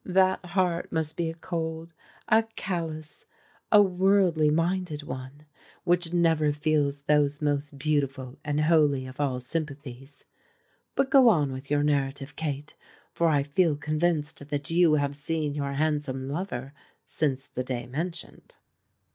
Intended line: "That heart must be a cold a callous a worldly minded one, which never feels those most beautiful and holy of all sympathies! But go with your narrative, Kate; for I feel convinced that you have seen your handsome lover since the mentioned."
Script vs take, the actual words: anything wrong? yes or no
yes